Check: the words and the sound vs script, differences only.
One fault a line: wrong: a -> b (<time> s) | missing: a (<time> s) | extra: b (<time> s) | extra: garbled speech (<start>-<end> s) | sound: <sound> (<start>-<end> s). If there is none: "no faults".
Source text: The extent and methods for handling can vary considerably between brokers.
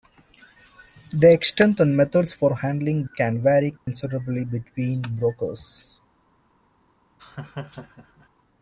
sound: dropout (3.8-3.9 s)
sound: laugh (7.2-8.3 s)